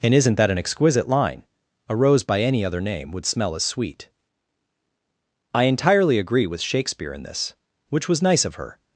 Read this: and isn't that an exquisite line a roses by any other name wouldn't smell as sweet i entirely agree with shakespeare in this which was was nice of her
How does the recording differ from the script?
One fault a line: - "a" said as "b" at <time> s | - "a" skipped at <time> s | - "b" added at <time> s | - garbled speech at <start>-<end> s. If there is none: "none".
- "roses" said as "rose" at 1.9 s
- "wouldn't" said as "would" at 3.1 s
- "was" skipped at 8.2 s